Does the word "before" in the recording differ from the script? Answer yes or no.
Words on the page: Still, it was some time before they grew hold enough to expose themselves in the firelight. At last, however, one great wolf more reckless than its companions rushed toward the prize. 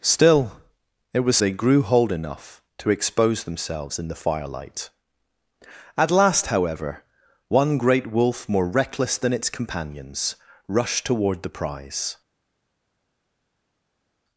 yes